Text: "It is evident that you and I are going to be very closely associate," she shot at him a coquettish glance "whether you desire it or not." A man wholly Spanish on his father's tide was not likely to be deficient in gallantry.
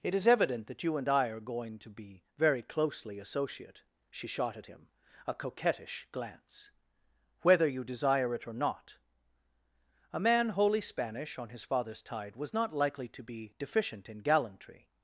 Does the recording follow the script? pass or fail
pass